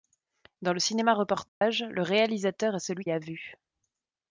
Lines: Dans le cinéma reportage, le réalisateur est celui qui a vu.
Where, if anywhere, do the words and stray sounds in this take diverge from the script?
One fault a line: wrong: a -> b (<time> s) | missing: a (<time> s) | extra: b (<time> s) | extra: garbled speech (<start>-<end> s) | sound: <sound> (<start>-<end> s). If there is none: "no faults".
sound: dropout (1.5-1.6 s)
missing: qui (3.0 s)